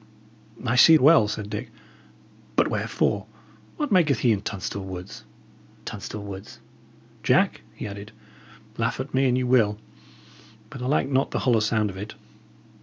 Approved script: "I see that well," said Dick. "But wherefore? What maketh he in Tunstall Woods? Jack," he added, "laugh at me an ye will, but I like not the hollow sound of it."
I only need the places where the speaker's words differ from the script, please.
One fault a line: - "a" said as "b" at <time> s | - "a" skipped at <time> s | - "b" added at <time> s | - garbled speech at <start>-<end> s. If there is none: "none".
- "that" skipped at 0.9 s
- "Tunstall Woods" added at 5.8 s